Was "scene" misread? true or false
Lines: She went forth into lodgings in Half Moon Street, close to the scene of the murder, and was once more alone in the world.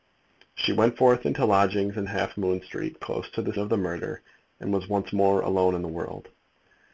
true